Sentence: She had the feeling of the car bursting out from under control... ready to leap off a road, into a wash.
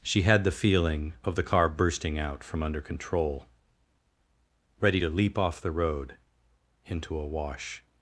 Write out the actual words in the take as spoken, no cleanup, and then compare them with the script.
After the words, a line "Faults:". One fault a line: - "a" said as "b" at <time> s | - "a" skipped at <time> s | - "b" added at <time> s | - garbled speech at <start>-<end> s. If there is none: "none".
She had the feeling of the car bursting out from under control... ready to leap off the road, into a wash.
Faults:
- "a" said as "the" at 5.6 s